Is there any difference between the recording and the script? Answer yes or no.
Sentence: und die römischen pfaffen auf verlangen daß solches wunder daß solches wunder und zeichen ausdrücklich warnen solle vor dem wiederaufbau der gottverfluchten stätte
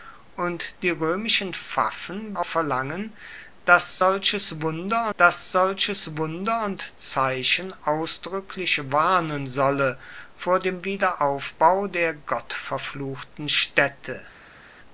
no